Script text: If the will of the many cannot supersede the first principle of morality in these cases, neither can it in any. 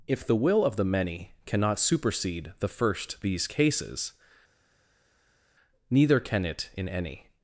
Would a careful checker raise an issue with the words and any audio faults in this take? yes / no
yes